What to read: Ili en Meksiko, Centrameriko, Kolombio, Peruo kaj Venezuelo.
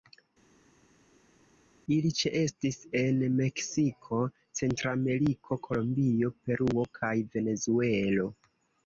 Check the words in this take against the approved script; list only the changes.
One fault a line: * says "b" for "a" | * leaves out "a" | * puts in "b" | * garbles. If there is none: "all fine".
* puts in "ĉeestis"